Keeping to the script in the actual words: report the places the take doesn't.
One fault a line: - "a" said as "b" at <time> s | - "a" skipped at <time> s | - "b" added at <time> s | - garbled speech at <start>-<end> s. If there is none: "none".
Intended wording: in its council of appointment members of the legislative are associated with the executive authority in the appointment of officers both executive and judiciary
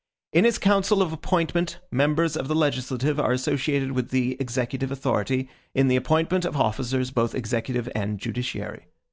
none